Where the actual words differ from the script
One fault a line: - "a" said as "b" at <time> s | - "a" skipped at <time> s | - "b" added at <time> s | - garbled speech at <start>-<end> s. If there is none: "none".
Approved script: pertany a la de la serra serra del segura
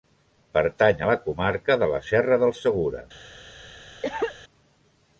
- "comarca" added at 1.3 s
- "serra" skipped at 2.4 s